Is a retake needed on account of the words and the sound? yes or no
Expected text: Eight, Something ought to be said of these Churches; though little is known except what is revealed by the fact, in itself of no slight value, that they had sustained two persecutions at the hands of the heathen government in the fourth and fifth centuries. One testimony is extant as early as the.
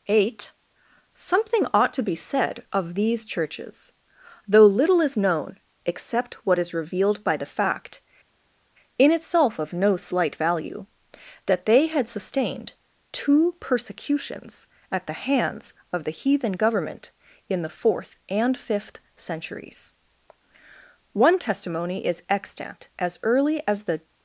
no